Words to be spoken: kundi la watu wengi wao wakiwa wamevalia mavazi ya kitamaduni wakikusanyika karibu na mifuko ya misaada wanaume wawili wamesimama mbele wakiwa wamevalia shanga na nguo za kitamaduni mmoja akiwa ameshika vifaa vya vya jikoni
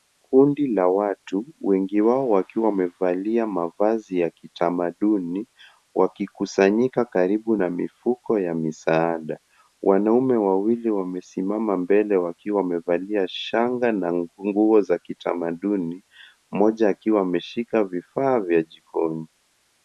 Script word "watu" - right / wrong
right